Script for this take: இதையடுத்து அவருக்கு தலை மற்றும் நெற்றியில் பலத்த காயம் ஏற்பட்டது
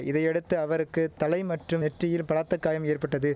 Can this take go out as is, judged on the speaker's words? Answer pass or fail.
pass